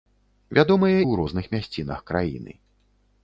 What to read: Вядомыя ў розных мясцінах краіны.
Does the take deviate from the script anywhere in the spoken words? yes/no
no